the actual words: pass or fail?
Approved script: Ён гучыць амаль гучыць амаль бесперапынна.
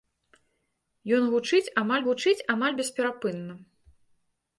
pass